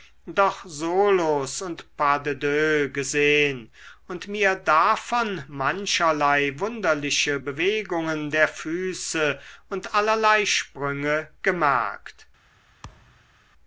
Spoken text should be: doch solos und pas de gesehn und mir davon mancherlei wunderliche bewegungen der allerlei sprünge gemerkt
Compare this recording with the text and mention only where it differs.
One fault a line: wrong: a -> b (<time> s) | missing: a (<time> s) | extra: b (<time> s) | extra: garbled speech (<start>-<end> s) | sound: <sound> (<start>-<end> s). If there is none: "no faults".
extra: deux (2.3 s)
extra: füße und (8.5 s)
sound: thud (12.8-13.3 s)